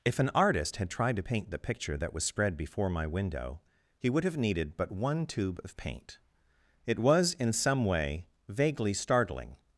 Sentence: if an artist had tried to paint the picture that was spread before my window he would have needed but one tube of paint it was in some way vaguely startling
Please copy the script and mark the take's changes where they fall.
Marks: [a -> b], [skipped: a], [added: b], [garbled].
if an artist had tried to paint the picture that was spread before my window he would have needed but one tube of paint it was in some way vaguely startling